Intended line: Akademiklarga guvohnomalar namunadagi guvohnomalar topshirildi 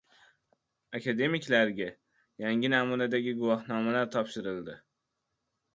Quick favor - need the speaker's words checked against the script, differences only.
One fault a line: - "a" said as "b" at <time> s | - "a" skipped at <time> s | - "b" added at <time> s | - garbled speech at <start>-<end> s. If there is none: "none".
- "guvohnomalar" said as "yangi" at 2.5 s